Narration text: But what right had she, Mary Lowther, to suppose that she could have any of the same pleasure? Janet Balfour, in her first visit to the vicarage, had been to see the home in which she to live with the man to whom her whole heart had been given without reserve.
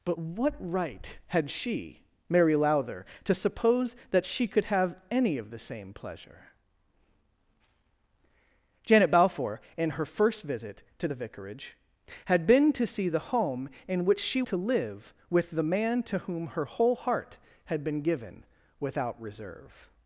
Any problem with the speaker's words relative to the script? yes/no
no